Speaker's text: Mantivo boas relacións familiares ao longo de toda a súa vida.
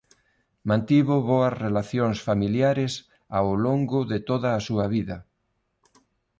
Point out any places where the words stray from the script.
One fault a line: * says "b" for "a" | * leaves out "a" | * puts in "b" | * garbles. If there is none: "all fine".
all fine